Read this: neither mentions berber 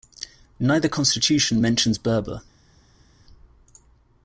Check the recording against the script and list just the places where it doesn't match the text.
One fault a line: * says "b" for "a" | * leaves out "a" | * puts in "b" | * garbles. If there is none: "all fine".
* puts in "constitution"